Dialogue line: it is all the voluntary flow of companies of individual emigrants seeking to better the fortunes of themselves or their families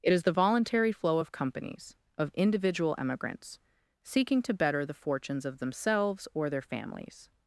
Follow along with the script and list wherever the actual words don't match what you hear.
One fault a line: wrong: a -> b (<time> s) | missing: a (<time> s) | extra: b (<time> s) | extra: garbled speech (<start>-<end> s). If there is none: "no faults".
missing: all (0.2 s)